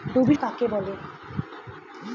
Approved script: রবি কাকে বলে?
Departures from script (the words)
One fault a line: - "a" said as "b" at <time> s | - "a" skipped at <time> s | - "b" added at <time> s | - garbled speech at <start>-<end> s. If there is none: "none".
none